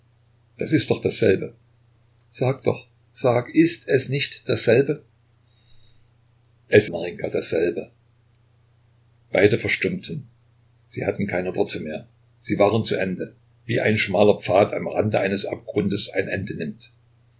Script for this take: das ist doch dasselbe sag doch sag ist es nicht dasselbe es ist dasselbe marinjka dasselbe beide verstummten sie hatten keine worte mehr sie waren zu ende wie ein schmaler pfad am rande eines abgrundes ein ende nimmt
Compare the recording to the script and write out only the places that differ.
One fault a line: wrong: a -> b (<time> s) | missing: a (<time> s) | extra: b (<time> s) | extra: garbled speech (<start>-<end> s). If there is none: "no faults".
missing: ist dasselbe (6.9 s)